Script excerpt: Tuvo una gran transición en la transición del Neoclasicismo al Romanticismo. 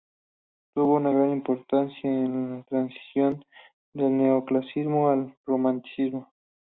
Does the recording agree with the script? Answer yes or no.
no